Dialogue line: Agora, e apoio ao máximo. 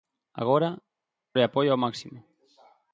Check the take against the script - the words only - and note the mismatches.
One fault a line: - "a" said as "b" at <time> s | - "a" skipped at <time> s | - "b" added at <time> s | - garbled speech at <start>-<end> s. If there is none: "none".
none